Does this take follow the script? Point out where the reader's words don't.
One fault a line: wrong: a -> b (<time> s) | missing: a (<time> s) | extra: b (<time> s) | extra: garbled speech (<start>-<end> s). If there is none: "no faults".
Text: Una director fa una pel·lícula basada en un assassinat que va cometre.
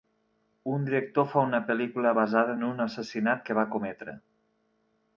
wrong: Una -> Un (0.8 s)